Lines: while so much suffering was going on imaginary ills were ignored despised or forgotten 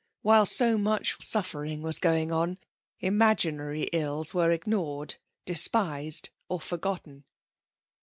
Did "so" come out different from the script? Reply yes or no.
no